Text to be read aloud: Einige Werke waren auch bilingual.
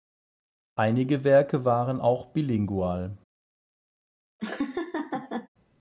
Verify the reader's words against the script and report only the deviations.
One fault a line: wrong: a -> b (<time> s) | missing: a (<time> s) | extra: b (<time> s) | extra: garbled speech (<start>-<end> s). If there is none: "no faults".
no faults